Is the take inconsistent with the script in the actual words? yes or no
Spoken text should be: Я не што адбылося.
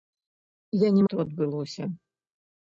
no